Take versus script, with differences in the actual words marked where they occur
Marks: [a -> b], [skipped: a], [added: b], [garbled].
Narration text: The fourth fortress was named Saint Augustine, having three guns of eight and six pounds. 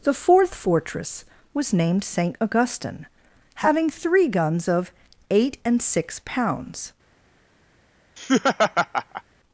The fourth fortress was named Saint Augustine, having three guns of eight and six pounds.